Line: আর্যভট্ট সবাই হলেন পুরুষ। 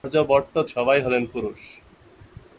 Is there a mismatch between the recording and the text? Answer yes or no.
no